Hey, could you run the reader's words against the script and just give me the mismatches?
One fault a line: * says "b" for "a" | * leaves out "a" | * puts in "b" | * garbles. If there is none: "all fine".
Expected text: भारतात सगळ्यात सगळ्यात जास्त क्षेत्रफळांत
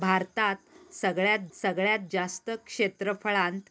all fine